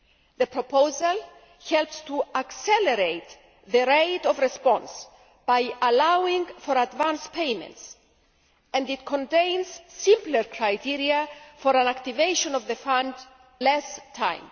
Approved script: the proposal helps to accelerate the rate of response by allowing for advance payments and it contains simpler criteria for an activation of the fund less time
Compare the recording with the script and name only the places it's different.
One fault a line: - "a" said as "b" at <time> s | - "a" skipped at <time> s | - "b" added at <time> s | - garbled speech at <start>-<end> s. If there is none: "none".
none